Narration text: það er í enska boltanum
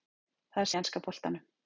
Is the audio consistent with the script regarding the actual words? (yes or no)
yes